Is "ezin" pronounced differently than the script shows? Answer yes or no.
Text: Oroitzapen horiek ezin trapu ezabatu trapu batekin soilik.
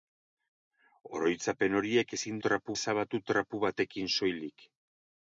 no